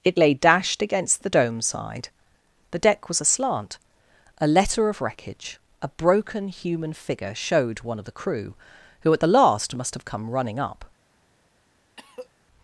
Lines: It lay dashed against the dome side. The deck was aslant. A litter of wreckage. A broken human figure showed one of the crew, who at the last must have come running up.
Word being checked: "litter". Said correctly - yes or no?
no